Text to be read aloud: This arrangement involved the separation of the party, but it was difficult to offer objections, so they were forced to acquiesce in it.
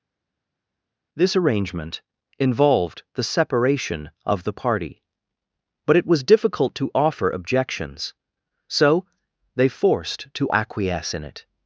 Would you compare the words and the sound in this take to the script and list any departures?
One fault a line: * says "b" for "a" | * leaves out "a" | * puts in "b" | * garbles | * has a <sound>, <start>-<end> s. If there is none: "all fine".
* leaves out "were"